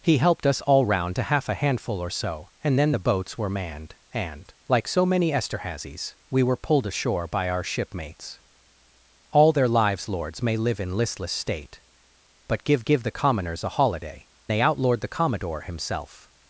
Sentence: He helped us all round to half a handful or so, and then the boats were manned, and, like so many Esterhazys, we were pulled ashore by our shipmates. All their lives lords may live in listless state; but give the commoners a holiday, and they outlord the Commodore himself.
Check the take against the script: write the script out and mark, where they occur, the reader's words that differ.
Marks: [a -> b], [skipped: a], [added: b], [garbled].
He helped us all round to half a handful or so, and then the boats were manned, and, like so many Esterhazys, we were pulled ashore by our shipmates. All their lives lords may live in listless state; but give [added: give] the commoners a holiday, [skipped: and] they outlord the Commodore himself.